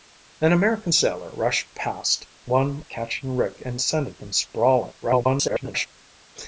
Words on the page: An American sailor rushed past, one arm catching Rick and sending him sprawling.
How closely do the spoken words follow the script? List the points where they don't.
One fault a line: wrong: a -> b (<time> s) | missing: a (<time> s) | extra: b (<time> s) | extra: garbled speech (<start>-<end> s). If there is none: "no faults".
missing: arm (2.8 s)
extra: garbled speech (5.0-5.9 s)